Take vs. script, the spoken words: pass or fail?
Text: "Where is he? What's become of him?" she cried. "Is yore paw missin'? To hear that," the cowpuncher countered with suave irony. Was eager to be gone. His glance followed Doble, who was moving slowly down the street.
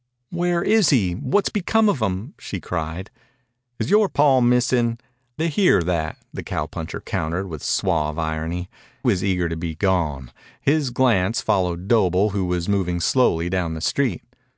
pass